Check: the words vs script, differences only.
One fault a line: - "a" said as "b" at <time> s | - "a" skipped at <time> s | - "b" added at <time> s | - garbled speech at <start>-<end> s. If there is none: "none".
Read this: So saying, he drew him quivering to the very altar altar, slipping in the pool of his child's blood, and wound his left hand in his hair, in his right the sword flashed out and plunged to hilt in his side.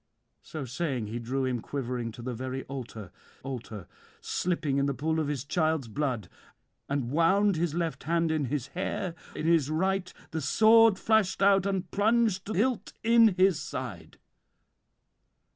none